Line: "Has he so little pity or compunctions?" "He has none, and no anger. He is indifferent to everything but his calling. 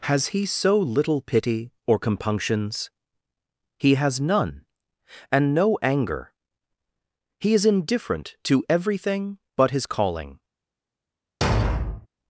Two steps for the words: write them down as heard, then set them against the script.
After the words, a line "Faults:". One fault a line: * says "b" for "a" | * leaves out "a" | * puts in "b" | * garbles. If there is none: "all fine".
"Has he so little pity or compunctions?" "He has none, and no anger. He is indifferent to everything but his calling.
Faults:
all fine